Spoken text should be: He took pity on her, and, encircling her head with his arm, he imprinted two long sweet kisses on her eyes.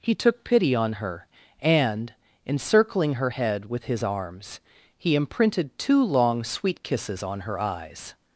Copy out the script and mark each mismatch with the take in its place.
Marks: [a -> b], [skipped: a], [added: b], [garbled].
He took pity on her, and, encircling her head with his [arm, -> arms] he imprinted two long sweet kisses on her eyes.